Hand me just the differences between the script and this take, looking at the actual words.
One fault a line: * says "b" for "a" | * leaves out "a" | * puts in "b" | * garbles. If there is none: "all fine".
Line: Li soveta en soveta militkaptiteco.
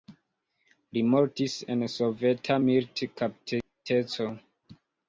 * says "mortis" for "soveta"